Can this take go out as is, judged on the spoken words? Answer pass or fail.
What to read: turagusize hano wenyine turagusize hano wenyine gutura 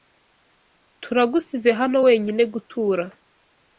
fail